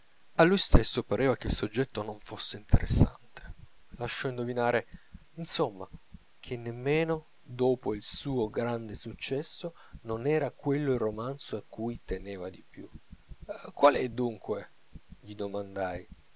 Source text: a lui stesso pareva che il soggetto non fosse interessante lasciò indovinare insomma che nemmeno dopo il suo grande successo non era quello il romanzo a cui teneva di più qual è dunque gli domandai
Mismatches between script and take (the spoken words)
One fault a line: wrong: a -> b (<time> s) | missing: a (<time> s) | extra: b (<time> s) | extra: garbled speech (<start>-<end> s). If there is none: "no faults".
no faults